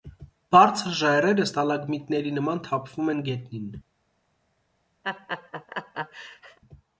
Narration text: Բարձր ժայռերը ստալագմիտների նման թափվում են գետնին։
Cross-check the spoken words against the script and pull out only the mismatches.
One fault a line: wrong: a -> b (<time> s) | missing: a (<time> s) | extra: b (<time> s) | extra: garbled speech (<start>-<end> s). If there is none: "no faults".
no faults